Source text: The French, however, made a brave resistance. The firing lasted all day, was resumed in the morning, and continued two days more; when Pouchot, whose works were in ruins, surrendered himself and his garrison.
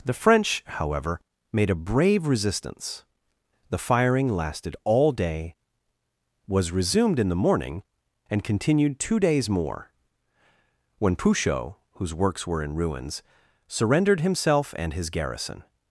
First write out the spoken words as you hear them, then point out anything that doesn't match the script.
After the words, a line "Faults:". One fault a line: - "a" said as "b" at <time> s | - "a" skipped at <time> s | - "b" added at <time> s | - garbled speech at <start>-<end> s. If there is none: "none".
The French, however, made a brave resistance. The firing lasted all day, was resumed in the morning, and continued two days more; when Pouchot, whose works were in ruins, surrendered himself and his garrison.
Faults:
none